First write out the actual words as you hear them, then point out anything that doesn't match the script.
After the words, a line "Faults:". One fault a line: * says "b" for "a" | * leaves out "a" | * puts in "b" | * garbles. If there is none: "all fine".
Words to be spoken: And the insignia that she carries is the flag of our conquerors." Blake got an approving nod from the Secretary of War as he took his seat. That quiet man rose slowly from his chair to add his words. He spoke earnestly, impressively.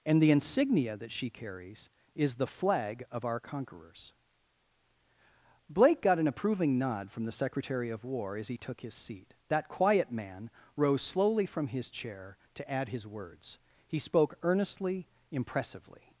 And the insignia that she carries is the flag of our conquerors." Blake got an approving nod from the Secretary of War as he took his seat. That quiet man rose slowly from his chair to add his words. He spoke earnestly, impressively.
Faults:
all fine